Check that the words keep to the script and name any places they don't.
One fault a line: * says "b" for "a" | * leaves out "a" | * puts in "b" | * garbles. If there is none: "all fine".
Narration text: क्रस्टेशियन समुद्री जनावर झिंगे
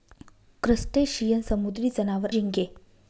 all fine